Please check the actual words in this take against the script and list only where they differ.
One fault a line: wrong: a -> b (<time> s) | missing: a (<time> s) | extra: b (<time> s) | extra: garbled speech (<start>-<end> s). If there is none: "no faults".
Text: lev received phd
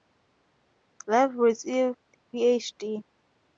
no faults